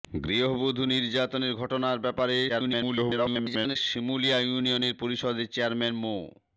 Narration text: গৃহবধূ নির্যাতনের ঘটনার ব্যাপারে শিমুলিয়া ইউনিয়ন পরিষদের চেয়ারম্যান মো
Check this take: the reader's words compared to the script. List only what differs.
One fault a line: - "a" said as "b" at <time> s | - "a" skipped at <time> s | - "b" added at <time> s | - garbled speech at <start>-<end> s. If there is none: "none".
- garbled speech at 2.5-3.8 s